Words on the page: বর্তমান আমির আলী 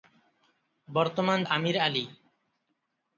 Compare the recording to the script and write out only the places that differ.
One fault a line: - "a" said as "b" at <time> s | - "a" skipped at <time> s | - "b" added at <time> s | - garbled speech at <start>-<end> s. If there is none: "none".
none